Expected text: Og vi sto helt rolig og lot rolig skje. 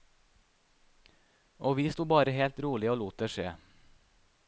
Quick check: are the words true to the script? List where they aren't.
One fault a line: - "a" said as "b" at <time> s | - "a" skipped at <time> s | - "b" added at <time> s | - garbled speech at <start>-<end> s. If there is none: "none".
- "bare" added at 2.1 s
- "rolig" said as "det" at 3.2 s